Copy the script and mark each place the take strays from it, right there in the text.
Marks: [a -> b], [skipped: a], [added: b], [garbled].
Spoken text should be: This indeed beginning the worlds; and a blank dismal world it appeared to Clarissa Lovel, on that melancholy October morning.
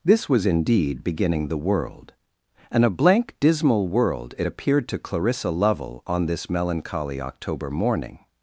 This [added: was] indeed beginning the [worlds; -> world] and a blank dismal world it appeared to Clarissa Lovel, on [that -> this] melancholy October morning.